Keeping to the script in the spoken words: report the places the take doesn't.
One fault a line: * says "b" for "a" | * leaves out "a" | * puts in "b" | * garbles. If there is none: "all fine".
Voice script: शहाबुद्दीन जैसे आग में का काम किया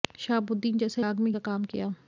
all fine